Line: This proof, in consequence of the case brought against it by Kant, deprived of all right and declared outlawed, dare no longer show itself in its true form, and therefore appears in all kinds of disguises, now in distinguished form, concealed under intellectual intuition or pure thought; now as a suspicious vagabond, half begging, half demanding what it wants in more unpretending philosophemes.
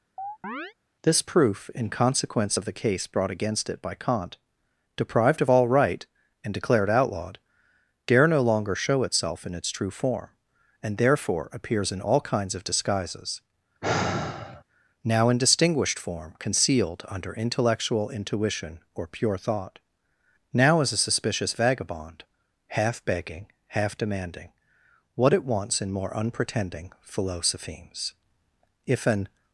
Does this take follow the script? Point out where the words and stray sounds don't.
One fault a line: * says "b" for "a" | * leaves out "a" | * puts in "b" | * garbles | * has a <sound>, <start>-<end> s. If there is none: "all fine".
* has a chirp, 0.2-0.7 s
* has a sigh, 13.8-14.6 s
* puts in "If an"